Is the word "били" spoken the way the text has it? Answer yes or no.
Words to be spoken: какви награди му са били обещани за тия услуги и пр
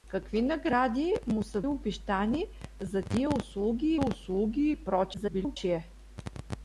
no